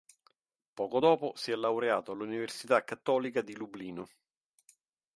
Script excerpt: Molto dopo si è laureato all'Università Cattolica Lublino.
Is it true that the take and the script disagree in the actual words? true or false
true